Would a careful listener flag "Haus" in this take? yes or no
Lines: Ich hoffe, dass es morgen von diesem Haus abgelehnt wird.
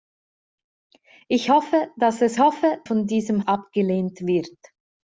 yes